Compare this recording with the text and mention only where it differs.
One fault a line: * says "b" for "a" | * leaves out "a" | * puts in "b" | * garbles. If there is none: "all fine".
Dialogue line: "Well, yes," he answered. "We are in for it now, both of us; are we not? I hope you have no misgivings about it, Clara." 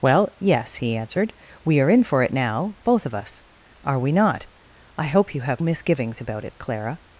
* leaves out "no"